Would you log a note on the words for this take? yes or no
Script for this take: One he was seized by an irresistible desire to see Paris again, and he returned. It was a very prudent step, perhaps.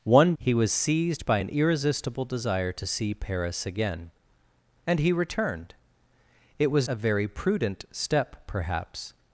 no